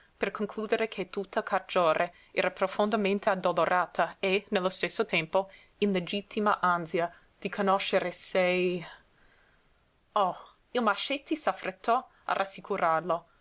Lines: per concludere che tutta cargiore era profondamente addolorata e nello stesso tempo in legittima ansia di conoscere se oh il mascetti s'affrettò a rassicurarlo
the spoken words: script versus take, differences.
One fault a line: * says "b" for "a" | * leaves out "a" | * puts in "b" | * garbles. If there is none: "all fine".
all fine